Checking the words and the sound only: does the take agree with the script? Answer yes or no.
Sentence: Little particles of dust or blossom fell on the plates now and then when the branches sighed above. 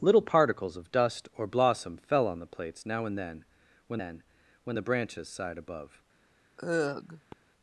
no